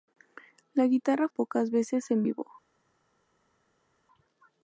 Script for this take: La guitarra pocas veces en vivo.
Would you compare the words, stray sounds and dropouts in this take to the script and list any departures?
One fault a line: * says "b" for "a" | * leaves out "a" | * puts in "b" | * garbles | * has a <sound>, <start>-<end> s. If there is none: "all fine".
all fine